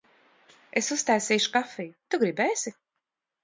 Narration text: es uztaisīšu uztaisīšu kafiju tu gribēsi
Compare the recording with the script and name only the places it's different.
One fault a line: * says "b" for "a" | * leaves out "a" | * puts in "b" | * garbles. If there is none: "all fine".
* leaves out "uztaisīšu"